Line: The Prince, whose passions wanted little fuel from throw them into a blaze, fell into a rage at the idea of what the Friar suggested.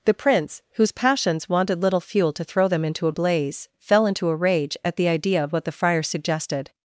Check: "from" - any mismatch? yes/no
yes